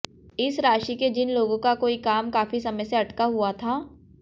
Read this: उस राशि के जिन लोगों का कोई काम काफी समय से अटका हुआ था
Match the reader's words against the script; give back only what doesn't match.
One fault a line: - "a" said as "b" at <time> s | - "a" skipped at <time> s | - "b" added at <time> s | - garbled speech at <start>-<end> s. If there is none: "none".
- "उस" said as "इस" at 0.4 s